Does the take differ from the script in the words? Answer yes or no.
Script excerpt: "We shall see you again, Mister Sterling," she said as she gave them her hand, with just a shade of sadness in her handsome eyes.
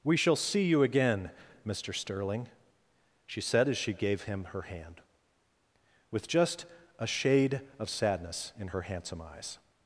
yes